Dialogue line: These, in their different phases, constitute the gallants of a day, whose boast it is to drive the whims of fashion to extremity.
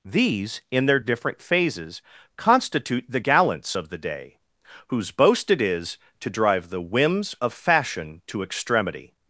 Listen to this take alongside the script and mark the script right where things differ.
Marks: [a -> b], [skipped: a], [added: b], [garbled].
These, in their different phases, constitute the gallants of [a -> the] day, whose boast it is to drive the whims of fashion to extremity.